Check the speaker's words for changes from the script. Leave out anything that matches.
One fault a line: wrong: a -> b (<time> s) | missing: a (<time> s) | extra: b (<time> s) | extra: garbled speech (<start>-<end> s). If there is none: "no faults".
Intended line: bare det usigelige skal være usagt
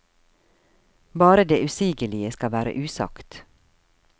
no faults